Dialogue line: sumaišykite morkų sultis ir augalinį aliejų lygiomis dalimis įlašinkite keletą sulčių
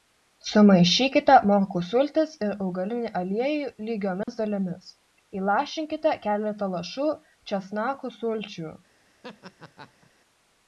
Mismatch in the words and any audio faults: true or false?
true